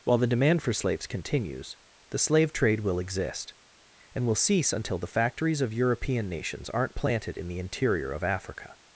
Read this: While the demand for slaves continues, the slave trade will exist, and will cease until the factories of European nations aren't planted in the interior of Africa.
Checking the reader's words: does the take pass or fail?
pass